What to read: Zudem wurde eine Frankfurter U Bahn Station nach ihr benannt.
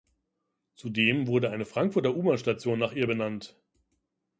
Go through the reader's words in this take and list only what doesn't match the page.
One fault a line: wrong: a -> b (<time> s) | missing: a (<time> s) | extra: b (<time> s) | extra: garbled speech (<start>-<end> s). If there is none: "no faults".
no faults